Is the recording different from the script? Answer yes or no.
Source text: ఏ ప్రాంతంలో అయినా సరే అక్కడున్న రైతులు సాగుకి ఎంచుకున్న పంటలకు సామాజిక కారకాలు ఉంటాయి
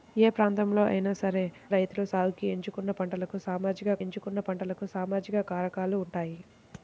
yes